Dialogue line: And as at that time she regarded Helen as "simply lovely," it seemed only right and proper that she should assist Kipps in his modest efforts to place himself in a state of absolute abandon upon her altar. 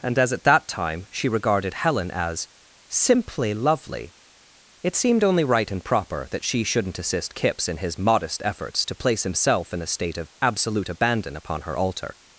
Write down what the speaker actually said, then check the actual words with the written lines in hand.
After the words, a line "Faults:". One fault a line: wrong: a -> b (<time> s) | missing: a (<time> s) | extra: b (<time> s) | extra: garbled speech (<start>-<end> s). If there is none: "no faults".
And as at that time she regarded Helen as "simply lovely," it seemed only right and proper that she shouldn't assist Kipps in his modest efforts to place himself in a state of absolute abandon upon her altar.
Faults:
wrong: should -> shouldn't (6.6 s)